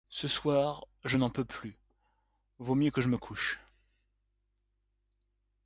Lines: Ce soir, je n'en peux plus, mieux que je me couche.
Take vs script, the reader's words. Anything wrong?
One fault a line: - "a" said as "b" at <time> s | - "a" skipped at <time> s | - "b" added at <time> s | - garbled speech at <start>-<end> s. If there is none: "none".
- "vaut" added at 2.6 s